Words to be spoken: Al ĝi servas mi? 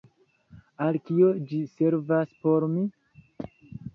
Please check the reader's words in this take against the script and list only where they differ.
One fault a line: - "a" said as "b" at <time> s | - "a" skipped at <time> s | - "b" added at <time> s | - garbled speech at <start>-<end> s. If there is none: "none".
- "kio" added at 1.1 s
- "por" added at 2.4 s